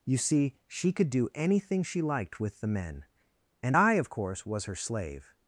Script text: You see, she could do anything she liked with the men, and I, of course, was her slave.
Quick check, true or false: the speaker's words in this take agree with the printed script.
true